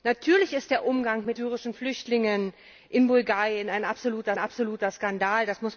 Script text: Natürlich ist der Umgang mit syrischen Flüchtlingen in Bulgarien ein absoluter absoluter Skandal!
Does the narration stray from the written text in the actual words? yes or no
no